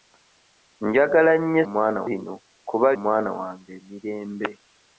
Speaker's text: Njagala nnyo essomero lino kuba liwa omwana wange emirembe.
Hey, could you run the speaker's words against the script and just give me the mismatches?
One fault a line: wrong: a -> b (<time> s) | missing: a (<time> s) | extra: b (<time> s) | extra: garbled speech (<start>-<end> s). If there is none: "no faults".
wrong: essomero -> omwana (1.7 s)
missing: liwa (2.9 s)